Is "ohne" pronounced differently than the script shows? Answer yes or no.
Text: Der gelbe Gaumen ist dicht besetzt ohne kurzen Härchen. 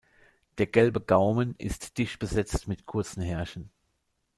yes